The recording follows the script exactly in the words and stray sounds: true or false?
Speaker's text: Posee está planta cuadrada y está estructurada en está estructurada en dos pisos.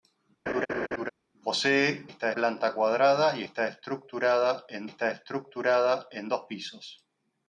false